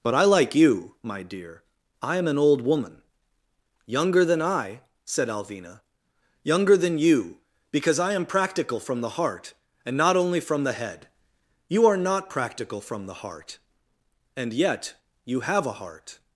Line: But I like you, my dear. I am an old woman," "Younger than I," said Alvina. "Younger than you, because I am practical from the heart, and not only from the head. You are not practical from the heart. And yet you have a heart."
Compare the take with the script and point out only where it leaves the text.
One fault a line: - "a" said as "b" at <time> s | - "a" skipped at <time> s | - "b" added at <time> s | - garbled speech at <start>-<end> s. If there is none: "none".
none